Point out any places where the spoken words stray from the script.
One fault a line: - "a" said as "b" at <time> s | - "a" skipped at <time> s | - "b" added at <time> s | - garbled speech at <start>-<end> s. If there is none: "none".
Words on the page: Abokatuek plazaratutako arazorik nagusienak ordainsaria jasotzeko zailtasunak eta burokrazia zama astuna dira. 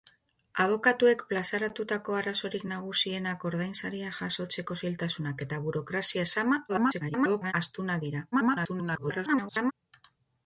- garbled speech at 6.7-7.5 s
- garbled speech at 8.3-9.7 s